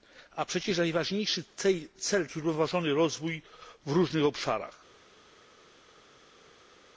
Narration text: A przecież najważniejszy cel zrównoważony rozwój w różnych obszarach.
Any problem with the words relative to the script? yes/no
no